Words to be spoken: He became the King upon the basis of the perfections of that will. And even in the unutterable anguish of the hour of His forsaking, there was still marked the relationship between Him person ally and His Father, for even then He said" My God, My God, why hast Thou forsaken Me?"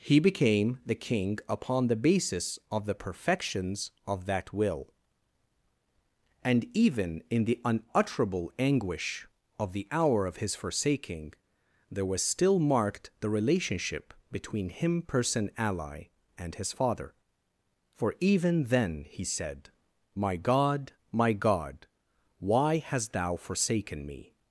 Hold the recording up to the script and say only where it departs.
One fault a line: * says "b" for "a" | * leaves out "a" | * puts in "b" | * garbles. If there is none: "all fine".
all fine